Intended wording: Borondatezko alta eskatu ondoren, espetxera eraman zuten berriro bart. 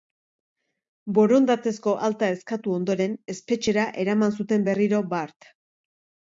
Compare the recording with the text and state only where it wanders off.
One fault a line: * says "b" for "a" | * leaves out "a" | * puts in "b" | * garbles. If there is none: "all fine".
all fine